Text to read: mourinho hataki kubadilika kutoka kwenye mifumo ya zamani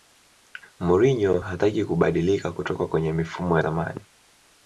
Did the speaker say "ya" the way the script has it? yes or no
no